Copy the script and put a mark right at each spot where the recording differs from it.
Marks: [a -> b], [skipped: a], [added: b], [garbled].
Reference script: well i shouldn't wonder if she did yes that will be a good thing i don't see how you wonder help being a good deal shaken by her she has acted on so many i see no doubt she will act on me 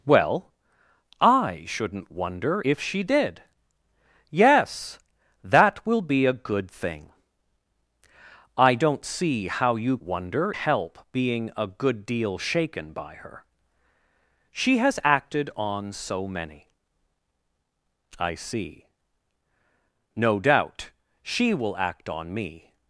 well i shouldn't wonder if she did yes that will be a good thing i don't see how you wonder help being a good deal shaken by her she has acted on so many i see no doubt she will act on me